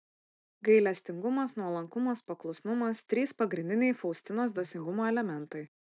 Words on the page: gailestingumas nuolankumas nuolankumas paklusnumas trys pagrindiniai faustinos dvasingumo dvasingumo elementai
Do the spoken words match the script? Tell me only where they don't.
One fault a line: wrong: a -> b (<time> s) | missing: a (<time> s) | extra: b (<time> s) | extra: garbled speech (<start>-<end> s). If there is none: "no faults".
missing: nuolankumas (2.2 s)
missing: dvasingumo (5.1 s)